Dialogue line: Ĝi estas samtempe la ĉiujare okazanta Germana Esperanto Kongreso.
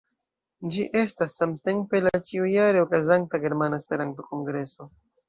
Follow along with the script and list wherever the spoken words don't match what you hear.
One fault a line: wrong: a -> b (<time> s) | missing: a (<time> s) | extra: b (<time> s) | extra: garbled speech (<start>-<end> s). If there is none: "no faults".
no faults